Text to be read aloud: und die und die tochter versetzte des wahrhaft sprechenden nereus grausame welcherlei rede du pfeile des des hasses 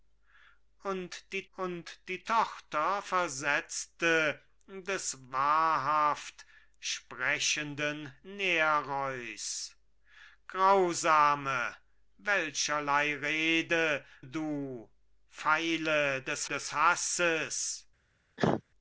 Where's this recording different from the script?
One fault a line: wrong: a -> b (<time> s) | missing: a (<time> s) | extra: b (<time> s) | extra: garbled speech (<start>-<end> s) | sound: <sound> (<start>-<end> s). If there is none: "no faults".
sound: cough (18.4-18.6 s)